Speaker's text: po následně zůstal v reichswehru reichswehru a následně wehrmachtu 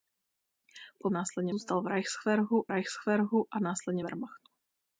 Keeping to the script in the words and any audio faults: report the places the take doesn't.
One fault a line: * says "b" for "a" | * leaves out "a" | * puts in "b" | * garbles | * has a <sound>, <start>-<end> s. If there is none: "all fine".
all fine